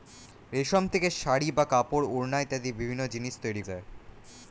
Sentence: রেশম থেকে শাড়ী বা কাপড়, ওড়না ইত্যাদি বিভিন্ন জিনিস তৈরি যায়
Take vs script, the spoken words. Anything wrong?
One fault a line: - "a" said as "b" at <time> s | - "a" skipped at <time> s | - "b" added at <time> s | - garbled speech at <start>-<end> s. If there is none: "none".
none